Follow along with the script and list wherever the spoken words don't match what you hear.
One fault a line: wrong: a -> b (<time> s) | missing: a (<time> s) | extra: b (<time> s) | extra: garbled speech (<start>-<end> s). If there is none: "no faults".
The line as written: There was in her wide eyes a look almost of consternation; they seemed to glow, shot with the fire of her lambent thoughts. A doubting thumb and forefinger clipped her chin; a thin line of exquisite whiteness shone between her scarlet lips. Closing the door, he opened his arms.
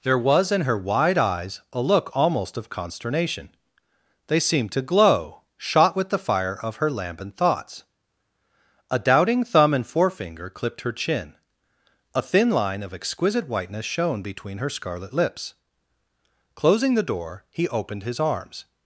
no faults